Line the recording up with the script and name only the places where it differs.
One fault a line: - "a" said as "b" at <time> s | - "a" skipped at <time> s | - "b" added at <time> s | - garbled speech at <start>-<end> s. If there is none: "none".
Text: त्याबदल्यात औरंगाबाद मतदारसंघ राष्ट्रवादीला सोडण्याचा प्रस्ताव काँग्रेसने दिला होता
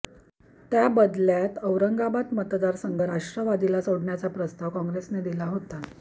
none